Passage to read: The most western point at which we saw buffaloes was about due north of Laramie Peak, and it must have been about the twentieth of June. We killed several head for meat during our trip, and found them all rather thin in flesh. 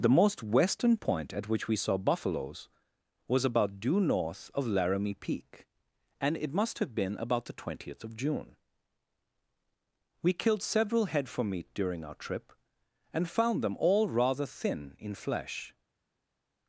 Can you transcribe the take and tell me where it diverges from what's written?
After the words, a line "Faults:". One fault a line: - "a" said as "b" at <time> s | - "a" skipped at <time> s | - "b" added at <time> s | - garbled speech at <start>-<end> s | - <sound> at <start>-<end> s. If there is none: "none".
The most western point at which we saw buffaloes was about due north of Laramie Peak, and it must have been about the twentieth of June. We killed several head for meat during our trip, and found them all rather thin in flesh.
Faults:
none